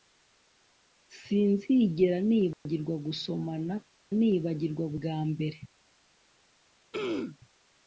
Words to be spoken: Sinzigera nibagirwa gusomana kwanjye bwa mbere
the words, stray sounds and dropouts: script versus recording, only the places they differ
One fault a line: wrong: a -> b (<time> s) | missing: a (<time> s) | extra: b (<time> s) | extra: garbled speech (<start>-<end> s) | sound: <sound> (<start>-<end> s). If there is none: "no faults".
sound: dropout (2.5-2.7 s)
wrong: kwanjye -> nibagirwa (4.2 s)
sound: throat clearing (6.9-7.4 s)